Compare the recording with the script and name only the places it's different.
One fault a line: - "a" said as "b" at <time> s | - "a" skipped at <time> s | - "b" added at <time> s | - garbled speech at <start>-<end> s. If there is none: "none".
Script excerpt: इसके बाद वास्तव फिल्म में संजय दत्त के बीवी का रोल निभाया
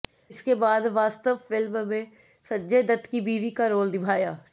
- "के" said as "की" at 3.1 s